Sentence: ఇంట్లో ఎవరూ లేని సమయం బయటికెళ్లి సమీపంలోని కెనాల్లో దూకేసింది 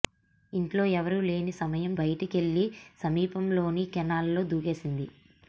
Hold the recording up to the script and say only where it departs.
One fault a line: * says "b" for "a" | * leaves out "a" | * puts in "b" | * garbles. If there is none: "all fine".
all fine